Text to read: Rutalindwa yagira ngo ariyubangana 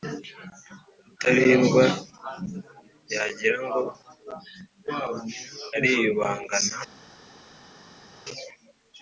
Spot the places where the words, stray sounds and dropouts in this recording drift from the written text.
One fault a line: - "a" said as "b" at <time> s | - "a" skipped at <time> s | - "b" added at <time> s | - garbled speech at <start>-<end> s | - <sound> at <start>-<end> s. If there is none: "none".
none